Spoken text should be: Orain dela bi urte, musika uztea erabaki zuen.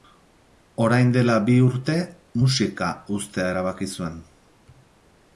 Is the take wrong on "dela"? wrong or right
right